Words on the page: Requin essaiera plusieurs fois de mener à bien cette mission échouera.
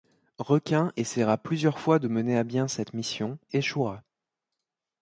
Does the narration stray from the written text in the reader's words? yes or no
no